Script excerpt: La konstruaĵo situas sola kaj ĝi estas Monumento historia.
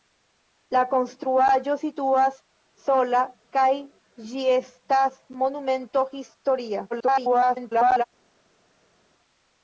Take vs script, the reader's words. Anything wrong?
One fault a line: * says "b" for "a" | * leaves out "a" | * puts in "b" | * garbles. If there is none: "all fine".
* garbles